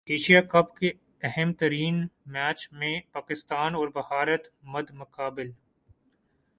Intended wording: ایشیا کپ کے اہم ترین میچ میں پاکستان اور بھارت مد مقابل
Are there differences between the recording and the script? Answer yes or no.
no